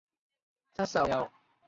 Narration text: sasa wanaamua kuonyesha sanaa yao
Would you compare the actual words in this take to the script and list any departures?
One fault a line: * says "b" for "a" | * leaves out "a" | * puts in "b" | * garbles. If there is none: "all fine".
* leaves out "wanaamua kuonyesha sanaa"